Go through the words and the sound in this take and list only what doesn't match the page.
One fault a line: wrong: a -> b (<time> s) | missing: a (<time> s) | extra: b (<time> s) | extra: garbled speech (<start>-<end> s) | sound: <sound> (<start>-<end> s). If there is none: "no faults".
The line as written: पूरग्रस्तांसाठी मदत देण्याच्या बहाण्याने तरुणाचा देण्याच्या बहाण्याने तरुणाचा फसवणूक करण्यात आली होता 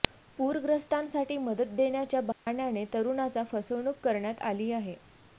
sound: dropout (2.3-2.5 s)
missing: देण्याच्या बहाण्याने तरुणाचा (3.4 s)
wrong: होता -> आहे (4.7 s)